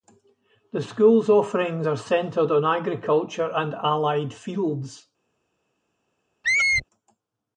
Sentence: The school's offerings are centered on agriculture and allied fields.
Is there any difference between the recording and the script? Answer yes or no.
no